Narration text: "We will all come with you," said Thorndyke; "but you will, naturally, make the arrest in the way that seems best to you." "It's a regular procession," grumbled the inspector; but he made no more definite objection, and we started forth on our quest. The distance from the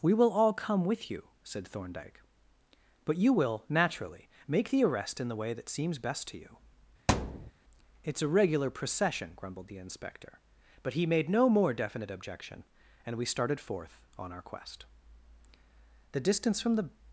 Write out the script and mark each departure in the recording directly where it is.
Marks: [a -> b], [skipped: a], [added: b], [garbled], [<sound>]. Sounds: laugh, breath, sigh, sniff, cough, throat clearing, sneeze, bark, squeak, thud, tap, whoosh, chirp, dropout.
"We will all come with you," said Thorndyke; "but you will, naturally, make the arrest in the way that seems best to you." [thud] "It's a regular procession," grumbled the inspector; but he made no more definite objection, and we started forth on our quest. The distance from the